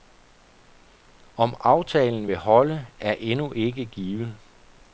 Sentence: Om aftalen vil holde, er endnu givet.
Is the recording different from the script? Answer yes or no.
yes